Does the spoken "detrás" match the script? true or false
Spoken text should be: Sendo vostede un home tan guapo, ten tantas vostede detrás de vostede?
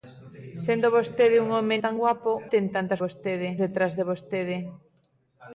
true